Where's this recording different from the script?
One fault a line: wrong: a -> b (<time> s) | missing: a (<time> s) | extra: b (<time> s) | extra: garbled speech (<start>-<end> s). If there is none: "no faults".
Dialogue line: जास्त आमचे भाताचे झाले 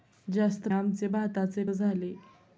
no faults